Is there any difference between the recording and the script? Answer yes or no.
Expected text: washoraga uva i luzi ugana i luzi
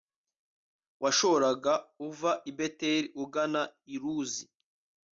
yes